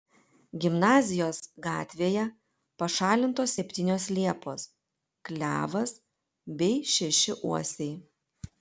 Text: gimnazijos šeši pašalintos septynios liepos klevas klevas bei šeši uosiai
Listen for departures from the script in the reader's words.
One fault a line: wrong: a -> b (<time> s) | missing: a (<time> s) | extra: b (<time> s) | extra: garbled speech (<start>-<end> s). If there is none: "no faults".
wrong: šeši -> gatvėje (1.6 s)
missing: klevas (6.0 s)